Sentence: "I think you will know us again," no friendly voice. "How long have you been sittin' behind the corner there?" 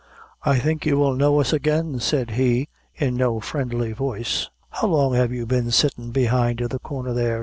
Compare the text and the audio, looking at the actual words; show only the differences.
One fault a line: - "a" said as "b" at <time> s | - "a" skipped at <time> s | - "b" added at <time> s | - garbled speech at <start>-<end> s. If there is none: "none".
- "said he in" added at 2.0 s